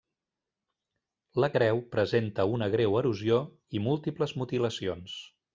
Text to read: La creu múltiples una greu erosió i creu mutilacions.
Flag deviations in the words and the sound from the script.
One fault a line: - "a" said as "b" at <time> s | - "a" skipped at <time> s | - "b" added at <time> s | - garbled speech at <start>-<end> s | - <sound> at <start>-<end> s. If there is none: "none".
- "múltiples" said as "presenta" at 2.0 s
- "creu" said as "múltiples" at 3.9 s